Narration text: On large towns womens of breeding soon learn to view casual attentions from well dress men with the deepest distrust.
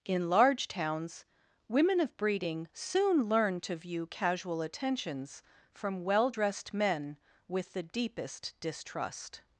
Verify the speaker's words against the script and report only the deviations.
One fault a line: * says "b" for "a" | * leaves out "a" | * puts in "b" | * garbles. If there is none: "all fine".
* says "In" for "On"
* says "women" for "womens"
* says "dressed" for "dress"